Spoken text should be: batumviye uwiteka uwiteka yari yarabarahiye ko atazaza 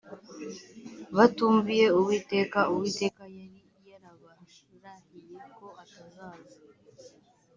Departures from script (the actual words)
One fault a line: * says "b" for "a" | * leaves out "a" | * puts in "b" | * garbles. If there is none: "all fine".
all fine